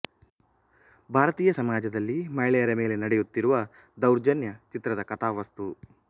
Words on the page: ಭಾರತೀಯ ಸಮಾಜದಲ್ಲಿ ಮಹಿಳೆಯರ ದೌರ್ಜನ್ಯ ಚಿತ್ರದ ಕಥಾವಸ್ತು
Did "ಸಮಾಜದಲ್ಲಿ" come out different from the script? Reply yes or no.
no